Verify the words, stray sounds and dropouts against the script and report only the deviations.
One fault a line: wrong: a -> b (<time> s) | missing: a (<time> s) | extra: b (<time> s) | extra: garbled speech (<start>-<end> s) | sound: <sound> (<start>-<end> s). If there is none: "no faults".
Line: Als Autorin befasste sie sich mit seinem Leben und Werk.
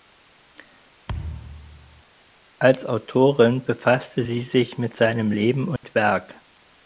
sound: thud (1.1-2.0 s)
sound: dropout (5.8-5.8 s)